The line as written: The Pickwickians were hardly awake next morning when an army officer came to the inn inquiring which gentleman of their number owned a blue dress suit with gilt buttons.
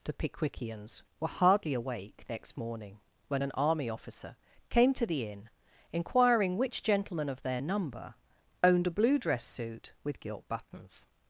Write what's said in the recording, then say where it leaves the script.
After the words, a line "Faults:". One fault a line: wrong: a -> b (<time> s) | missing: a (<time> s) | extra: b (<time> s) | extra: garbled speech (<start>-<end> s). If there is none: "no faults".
The Pickwickians were hardly awake next morning when an army officer came to the inn inquiring which gentleman of their number owned a blue dress suit with gilt buttons.
Faults:
no faults